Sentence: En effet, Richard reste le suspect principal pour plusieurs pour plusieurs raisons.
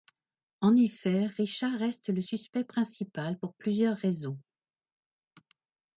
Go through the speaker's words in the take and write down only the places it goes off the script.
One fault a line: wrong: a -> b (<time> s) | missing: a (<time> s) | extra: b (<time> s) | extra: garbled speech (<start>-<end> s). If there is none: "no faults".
missing: pour plusieurs (4.0 s)